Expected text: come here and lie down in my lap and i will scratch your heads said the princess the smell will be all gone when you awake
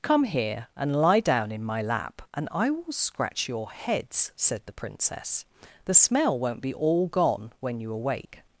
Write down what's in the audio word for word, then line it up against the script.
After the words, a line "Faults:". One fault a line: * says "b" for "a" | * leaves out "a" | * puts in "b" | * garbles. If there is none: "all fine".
come here and lie down in my lap and i will scratch your heads said the princess the smell won't be all gone when you awake
Faults:
* says "won't" for "will"